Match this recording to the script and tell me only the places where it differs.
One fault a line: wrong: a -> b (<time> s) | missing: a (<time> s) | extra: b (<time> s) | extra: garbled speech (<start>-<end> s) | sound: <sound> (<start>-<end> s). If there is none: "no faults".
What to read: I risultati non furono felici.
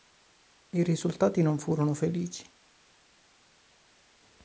no faults